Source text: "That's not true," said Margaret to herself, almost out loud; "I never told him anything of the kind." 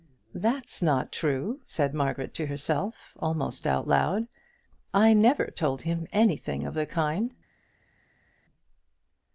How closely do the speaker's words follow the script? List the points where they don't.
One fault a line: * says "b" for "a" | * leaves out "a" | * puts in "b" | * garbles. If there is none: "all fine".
all fine